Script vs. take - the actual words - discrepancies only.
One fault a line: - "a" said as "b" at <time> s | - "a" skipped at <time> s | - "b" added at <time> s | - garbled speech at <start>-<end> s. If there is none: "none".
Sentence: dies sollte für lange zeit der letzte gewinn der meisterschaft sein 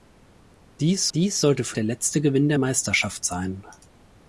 - "dies" added at 1.1 s
- "lange zeit" skipped at 1.8 s